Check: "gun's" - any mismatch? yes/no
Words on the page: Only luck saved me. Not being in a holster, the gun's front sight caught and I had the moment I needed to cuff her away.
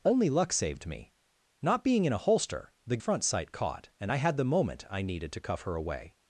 yes